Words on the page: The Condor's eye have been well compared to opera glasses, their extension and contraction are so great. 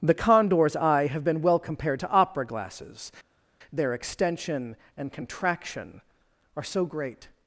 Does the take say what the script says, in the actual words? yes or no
yes